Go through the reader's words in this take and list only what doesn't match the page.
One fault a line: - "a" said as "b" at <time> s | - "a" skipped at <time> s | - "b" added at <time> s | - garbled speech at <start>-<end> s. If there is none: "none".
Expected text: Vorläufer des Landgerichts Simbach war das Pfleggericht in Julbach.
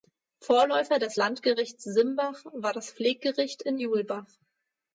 none